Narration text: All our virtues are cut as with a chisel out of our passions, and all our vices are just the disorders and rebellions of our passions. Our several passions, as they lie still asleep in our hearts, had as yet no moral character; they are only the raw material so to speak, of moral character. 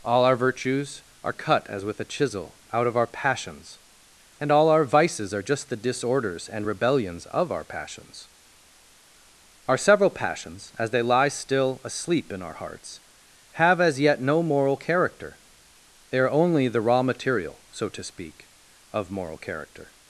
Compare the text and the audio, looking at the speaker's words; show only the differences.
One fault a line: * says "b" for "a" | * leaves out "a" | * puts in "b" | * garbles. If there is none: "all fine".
* says "have" for "had"